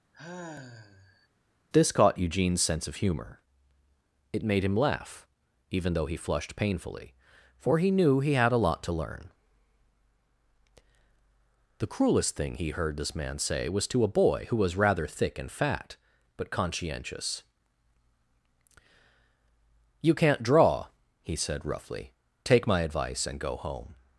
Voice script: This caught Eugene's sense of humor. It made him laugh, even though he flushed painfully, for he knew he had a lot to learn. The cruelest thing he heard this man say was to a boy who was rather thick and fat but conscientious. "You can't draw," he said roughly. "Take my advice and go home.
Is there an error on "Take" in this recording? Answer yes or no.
no